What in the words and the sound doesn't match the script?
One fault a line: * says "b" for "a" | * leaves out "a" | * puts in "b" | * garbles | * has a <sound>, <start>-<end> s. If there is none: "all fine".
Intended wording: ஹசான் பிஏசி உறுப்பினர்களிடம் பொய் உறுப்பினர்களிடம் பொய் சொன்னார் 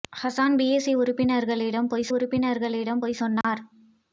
* has a dropout, 3.4-3.4 s